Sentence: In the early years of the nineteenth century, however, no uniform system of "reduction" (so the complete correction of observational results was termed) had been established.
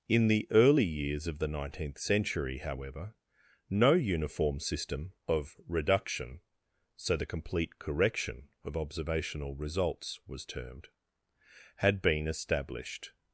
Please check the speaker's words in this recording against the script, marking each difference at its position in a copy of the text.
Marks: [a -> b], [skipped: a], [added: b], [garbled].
In the early years of the nineteenth century, however, no uniform system of "reduction" (so the complete correction of observational results was termed) had been established.